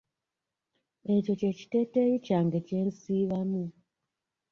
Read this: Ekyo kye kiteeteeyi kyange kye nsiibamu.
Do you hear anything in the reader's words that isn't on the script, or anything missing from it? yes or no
no